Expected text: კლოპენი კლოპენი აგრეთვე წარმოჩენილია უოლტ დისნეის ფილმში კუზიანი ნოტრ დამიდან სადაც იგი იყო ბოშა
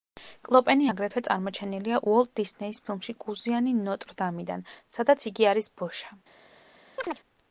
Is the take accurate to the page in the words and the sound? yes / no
no